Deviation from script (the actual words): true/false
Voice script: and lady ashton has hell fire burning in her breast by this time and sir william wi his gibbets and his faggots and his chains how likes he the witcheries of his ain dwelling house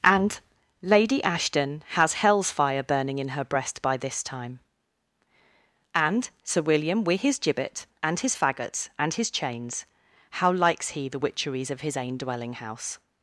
true